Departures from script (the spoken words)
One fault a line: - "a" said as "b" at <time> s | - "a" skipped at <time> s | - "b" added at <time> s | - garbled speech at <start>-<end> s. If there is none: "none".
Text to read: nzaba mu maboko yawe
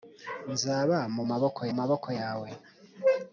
- "maboko" added at 1.8 s